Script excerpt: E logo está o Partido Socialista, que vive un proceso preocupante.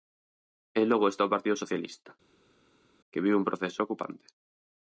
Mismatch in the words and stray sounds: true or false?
false